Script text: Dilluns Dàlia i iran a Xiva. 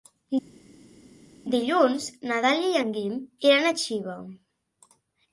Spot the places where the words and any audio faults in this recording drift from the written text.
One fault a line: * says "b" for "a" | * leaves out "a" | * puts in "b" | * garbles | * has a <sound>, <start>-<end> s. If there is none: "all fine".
* puts in "na"
* puts in "en Guim"